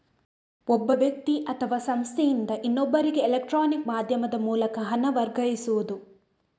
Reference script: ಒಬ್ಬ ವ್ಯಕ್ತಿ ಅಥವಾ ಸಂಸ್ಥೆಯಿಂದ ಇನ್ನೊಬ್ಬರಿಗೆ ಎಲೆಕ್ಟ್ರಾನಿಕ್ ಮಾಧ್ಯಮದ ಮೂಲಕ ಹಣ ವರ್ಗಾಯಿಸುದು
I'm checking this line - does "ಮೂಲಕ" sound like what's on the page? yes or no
yes